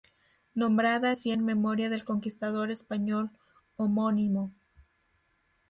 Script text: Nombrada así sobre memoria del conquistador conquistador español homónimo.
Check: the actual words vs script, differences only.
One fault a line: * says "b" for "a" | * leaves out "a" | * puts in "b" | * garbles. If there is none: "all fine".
* says "en" for "sobre"
* leaves out "conquistador"